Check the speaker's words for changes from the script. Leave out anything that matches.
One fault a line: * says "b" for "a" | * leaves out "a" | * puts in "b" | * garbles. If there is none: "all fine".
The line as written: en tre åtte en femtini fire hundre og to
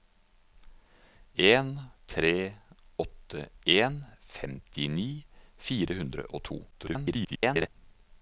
* garbles